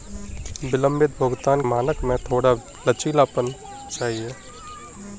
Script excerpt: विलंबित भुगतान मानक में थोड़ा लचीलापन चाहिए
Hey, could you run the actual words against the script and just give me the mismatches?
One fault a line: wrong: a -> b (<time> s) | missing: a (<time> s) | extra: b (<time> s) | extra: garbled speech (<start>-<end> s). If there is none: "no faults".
no faults